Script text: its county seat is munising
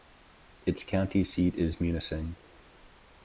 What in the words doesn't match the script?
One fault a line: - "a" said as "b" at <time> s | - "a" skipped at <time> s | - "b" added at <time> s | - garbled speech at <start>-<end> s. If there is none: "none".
none